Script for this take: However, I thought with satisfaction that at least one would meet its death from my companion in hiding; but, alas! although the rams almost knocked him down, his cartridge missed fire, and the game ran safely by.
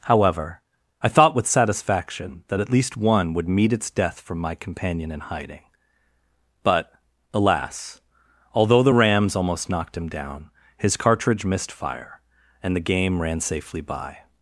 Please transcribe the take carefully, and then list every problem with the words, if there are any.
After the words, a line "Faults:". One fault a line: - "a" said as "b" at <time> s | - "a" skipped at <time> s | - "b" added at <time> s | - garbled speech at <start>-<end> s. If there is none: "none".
However, I thought with satisfaction that at least one would meet its death from my companion in hiding; but, alas! although the rams almost knocked him down, his cartridge missed fire, and the game ran safely by.
Faults:
none